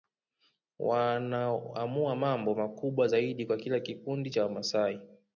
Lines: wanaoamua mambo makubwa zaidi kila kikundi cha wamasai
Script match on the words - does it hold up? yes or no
no